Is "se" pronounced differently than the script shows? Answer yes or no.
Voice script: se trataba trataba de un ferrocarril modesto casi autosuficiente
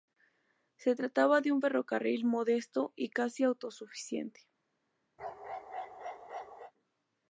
no